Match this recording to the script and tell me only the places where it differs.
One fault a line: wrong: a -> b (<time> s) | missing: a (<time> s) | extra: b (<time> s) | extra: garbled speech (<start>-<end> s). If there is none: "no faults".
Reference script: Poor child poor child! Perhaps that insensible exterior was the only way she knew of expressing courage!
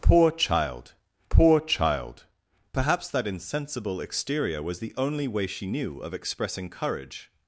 no faults